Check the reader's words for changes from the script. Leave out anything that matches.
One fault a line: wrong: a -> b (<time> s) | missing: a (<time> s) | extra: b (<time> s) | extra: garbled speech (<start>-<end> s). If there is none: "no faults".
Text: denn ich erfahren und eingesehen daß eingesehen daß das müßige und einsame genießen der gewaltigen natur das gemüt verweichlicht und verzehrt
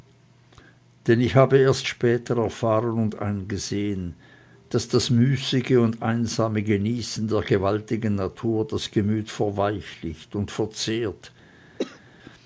extra: habe erst später (1.4 s)
missing: eingesehen daß (4.9 s)